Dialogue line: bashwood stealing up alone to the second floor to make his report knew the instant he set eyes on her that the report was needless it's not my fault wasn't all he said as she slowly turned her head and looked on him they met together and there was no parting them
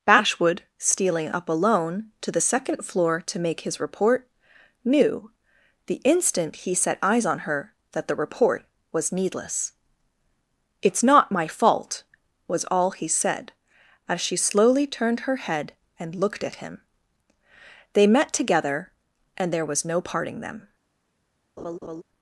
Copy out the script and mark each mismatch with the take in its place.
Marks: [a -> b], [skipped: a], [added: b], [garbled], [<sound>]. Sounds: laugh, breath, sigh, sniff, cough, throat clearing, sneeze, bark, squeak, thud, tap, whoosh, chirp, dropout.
bashwood stealing up alone to the second floor to make his report knew the instant he set eyes on her that the report was needless it's not my fault [wasn't -> was] all he said as she slowly turned her head and looked [on -> at] him they met together and there was no parting them [laugh]